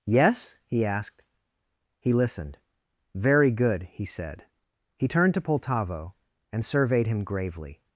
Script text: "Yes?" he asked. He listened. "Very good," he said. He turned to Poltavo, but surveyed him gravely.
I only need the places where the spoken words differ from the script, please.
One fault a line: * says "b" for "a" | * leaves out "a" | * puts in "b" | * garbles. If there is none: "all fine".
* says "and" for "but"